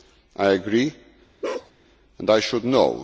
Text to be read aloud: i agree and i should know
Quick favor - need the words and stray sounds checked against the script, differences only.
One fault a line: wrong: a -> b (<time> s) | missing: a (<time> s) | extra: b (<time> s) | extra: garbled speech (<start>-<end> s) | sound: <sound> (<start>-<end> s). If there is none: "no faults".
sound: bark (1.4-1.7 s)